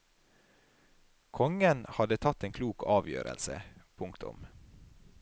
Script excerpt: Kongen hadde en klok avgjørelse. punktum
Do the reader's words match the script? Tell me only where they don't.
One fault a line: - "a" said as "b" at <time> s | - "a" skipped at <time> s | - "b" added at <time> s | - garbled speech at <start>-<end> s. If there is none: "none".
- "tatt" added at 2.2 s